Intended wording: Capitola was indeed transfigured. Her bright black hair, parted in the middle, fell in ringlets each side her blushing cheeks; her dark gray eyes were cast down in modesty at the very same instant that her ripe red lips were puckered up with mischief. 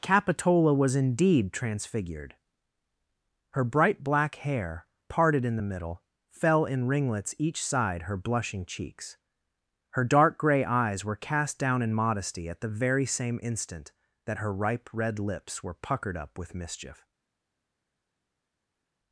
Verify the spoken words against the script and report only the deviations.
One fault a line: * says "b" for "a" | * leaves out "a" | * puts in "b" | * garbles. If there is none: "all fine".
all fine